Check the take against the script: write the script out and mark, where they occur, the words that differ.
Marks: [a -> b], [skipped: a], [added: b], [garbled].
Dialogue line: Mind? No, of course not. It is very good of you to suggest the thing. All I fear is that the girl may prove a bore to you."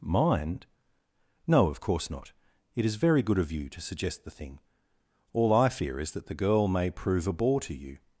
Mind? No, of course not. It is very good of you to suggest the thing. All I fear is that the girl may prove a bore to you."